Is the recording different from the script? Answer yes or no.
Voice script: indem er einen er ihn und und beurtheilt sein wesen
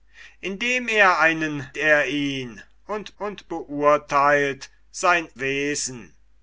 no